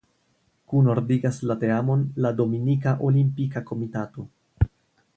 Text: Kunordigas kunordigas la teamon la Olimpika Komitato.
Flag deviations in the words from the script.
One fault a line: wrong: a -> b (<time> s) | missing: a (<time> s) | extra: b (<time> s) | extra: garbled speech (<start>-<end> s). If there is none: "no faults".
missing: kunordigas (1.4 s)
extra: Dominika (2.4 s)